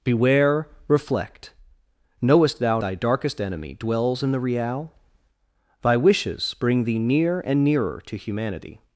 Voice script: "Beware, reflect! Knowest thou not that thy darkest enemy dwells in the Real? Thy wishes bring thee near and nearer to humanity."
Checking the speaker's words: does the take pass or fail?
fail